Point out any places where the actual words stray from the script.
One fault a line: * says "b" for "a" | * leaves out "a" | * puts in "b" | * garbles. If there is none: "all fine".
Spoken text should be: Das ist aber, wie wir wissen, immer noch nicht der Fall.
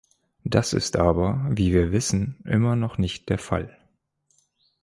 all fine